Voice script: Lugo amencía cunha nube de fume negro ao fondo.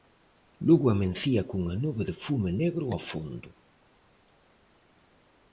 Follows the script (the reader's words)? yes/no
yes